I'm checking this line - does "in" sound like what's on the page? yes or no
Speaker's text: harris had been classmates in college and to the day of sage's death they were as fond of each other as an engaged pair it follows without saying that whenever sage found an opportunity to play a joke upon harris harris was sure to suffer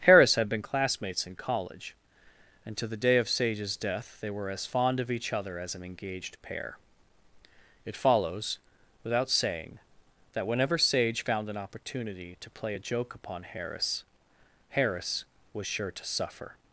yes